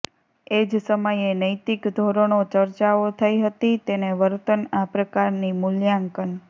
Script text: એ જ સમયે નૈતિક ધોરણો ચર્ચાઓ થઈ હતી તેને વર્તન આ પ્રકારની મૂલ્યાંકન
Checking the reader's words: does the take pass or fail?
pass